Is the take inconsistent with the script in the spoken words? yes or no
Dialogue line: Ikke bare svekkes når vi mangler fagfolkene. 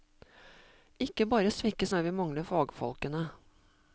no